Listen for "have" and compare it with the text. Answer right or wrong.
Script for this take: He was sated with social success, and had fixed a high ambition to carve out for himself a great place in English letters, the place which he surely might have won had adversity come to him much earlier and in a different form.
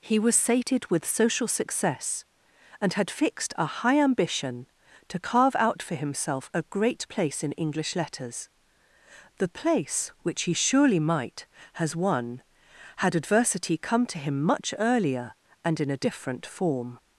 wrong